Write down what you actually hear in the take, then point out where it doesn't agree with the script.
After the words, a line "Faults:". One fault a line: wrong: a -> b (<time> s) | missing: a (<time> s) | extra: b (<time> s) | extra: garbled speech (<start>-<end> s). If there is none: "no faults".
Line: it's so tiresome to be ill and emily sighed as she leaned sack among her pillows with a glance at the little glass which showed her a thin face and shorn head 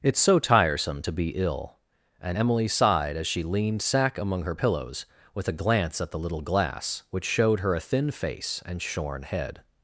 it's so tiresome to be ill and emily sighed as she leaned sack among her pillows with a glance at the little glass which showed her a thin face and shorn head
Faults:
no faults